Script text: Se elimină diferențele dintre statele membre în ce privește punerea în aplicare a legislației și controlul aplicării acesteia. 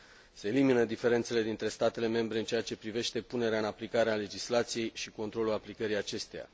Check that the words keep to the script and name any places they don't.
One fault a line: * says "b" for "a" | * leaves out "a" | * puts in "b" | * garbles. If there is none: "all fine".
* puts in "ceea"